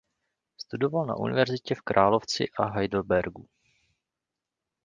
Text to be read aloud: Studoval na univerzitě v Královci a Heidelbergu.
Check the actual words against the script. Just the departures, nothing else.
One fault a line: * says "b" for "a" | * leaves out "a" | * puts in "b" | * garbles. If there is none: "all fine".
all fine